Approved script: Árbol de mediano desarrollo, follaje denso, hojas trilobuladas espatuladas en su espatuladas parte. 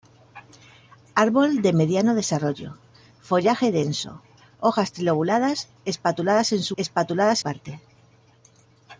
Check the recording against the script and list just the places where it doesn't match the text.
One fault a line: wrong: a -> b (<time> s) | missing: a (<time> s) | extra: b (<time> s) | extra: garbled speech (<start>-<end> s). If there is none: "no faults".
no faults